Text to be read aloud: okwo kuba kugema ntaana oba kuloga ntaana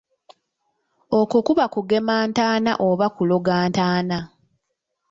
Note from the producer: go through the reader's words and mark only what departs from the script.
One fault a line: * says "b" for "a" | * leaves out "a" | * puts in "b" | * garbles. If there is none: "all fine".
all fine